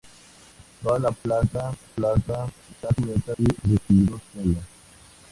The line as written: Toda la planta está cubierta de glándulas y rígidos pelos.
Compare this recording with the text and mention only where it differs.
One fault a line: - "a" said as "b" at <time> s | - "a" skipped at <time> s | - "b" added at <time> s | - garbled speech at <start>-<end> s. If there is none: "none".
- "planta" added at 1.8 s
- "de glándulas" skipped at 3.3 s